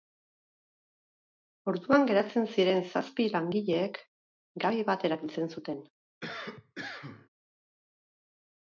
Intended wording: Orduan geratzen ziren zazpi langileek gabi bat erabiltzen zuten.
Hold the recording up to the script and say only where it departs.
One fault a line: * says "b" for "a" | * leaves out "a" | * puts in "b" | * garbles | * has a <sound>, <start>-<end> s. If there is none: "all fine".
* has a cough, 6.2-7.3 s